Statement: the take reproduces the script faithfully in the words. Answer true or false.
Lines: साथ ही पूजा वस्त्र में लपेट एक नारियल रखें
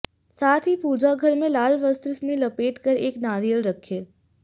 false